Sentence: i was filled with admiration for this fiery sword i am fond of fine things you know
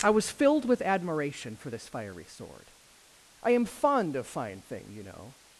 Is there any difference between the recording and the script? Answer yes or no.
yes